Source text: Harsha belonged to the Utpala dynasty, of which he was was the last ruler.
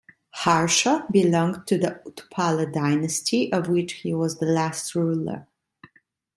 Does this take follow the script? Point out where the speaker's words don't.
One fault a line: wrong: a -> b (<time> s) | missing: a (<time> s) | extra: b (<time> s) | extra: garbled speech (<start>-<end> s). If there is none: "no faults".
missing: was (4.4 s)